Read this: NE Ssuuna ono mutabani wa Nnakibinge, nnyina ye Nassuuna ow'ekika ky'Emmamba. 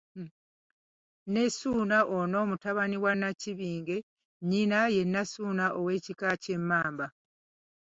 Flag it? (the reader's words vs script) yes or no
no